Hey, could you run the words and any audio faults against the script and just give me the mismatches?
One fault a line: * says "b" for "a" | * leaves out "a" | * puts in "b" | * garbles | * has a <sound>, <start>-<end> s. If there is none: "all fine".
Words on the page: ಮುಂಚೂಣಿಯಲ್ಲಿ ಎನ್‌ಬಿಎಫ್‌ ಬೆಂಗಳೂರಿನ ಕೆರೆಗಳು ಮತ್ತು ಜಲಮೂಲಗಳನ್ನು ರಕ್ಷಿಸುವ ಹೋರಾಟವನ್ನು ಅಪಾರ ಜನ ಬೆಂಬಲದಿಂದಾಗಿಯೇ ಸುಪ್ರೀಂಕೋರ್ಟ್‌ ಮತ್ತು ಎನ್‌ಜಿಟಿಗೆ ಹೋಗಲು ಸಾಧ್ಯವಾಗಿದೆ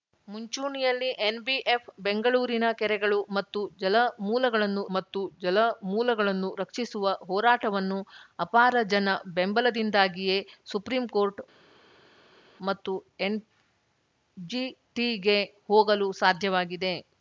* puts in "ಮತ್ತು ಜಲಮೂಲಗಳನ್ನು"